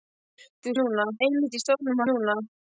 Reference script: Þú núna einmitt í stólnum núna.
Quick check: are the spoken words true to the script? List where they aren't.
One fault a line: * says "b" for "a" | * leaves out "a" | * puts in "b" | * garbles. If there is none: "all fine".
all fine